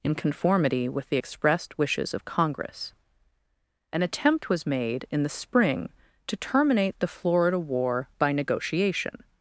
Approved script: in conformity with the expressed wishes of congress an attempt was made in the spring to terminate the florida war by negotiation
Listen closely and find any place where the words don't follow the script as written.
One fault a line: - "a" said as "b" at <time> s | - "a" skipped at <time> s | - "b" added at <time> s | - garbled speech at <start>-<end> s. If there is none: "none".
none